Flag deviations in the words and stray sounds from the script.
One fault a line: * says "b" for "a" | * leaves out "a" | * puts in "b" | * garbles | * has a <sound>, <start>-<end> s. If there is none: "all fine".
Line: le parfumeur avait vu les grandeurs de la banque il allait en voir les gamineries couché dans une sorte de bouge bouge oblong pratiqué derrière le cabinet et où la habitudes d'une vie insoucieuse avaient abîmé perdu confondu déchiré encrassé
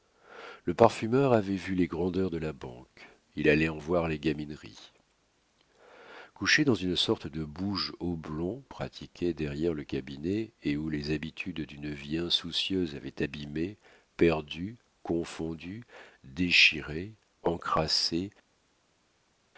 * leaves out "bouge"
* says "les" for "la"